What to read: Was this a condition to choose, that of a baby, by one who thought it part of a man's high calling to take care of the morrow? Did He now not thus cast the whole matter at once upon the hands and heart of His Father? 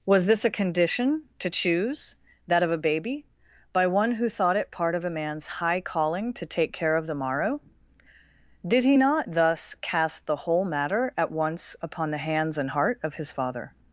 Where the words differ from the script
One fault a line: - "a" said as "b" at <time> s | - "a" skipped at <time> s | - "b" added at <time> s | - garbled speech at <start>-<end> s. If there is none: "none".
- "now" skipped at 9.0 s